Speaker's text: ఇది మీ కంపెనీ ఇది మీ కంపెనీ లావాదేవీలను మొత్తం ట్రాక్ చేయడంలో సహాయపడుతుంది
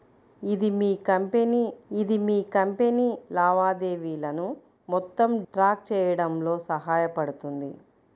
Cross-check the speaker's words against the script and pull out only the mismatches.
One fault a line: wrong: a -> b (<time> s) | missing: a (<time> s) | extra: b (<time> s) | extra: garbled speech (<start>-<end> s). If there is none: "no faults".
no faults